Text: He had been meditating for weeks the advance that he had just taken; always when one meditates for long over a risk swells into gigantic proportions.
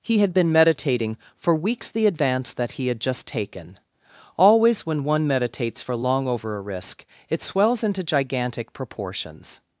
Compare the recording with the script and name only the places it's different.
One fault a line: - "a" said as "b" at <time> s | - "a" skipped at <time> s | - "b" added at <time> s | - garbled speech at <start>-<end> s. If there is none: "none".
- "it" added at 7.3 s